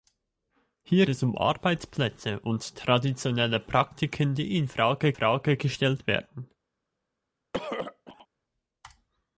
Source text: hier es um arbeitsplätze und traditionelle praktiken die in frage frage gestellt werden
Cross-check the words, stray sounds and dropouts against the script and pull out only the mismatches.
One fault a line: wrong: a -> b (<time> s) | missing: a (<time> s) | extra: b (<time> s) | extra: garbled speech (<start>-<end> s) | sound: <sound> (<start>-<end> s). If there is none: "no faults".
sound: throat clearing (7.5-8.3 s)